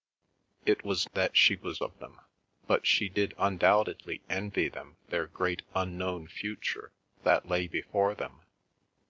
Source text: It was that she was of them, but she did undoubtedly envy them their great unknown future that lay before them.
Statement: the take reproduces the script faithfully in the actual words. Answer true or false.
true